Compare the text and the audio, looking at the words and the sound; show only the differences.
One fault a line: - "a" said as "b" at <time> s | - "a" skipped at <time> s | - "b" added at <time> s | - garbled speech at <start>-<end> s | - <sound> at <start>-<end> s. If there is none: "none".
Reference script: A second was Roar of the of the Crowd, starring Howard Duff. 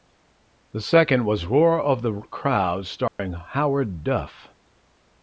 - "A" said as "The" at 0.7 s
- "of the" skipped at 2.2 s
- dropout at 3.1-3.2 s